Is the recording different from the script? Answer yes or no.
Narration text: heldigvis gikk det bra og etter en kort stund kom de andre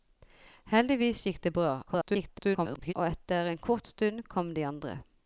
yes